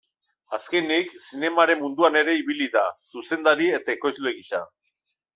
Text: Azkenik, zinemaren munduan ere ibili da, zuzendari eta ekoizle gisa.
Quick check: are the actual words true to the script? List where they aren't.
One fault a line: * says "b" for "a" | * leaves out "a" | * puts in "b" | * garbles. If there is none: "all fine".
all fine